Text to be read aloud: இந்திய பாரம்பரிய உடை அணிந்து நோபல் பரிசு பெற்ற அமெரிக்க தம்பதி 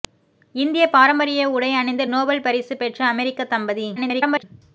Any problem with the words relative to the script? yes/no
yes